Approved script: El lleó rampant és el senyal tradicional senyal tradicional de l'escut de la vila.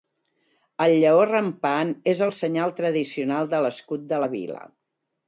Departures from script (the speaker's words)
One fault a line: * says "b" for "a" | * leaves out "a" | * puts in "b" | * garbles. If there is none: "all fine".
* leaves out "senyal tradicional"